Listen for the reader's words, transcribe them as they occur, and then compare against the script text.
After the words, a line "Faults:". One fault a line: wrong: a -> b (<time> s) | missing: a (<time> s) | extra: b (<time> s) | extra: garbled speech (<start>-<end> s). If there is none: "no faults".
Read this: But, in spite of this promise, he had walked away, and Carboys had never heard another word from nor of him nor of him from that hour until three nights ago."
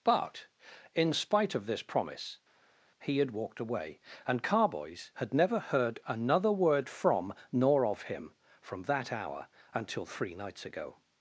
But, in spite of this promise, he had walked away, and Carboys had never heard another word from nor of him from that hour until three nights ago."
Faults:
missing: nor of him (8.3 s)